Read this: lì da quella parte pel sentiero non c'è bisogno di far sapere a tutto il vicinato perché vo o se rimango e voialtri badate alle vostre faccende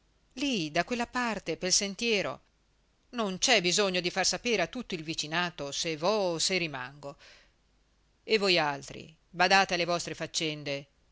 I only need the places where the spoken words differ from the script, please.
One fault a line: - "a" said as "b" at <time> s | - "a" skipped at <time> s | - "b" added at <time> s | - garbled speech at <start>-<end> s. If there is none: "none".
- "perché" said as "se" at 5.7 s